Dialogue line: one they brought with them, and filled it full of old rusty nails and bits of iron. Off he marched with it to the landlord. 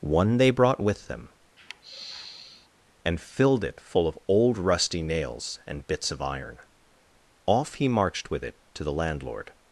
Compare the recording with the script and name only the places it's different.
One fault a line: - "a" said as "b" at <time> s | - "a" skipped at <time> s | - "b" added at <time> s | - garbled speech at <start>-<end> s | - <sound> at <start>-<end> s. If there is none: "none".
- sigh at 1.6-2.7 s